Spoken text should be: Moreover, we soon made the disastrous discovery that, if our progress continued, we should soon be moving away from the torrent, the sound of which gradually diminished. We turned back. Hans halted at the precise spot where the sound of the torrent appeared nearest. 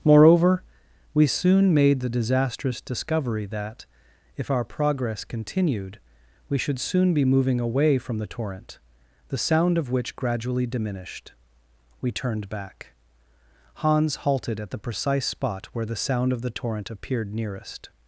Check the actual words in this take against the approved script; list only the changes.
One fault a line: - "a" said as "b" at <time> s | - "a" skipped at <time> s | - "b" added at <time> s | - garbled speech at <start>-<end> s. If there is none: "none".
none